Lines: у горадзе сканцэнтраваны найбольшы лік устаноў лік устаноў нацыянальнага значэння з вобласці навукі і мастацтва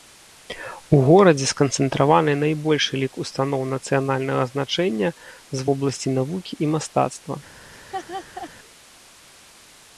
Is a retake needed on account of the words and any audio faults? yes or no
yes